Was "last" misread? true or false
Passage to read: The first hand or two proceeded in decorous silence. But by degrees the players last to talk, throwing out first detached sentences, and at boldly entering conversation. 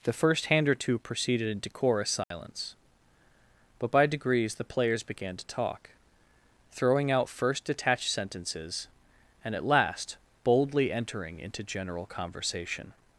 true